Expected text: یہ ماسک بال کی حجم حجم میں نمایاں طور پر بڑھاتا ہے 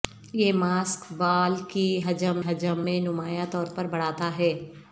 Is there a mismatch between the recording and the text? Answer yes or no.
no